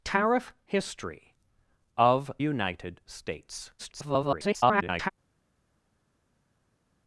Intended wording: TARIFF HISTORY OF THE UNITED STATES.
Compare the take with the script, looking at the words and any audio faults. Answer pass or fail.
fail